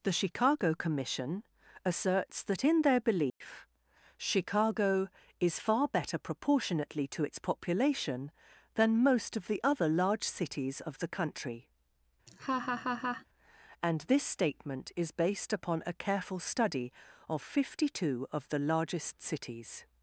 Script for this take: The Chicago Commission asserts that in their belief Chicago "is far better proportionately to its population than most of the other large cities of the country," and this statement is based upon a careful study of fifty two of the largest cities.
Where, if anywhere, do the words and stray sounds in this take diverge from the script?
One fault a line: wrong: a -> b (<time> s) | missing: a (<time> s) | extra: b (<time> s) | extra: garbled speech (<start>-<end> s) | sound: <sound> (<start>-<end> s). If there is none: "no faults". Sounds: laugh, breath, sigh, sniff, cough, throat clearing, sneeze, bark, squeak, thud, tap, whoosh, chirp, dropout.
sound: dropout (3.3-3.4 s)
sound: laugh (12.3-13.3 s)